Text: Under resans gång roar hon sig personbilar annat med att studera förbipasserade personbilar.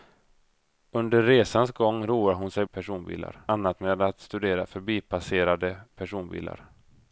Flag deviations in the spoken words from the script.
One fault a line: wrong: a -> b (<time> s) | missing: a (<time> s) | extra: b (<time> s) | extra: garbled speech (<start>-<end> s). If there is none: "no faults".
no faults